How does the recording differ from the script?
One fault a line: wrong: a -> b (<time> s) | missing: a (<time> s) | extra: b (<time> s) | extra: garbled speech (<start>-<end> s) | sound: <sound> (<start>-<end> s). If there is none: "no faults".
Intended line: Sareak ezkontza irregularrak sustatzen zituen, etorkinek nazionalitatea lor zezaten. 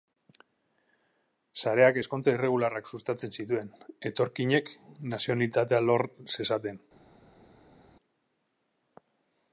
no faults